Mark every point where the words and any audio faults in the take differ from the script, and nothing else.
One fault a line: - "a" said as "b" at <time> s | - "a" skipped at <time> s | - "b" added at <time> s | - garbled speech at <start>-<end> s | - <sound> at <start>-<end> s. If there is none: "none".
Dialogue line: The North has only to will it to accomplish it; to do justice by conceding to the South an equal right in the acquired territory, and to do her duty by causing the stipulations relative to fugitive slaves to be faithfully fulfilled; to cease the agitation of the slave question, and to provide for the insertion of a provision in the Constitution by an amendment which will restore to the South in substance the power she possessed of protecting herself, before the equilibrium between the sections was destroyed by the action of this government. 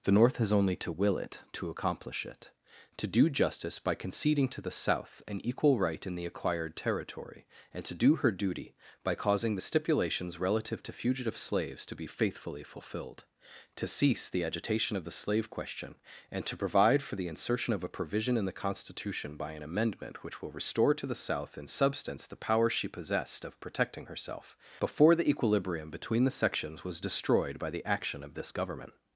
none